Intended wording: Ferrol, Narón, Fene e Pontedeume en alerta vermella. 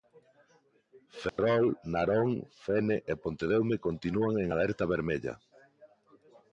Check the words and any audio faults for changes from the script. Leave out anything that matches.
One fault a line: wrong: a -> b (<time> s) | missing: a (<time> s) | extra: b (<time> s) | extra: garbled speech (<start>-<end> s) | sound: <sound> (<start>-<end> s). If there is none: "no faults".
sound: dropout (1.3-1.4 s)
extra: continúan (3.9 s)